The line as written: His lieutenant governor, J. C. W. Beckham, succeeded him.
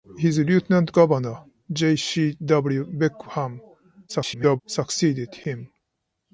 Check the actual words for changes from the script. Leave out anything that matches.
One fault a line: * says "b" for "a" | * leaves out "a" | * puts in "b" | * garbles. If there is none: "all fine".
* garbles